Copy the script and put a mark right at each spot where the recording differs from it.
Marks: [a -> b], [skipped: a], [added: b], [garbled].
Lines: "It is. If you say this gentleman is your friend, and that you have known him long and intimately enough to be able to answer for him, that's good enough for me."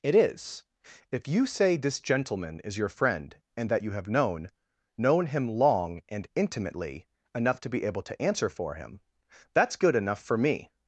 "It is. If you say this gentleman is your friend, and that you have known [added: known] him long and intimately enough to be able to answer for him, that's good enough for me."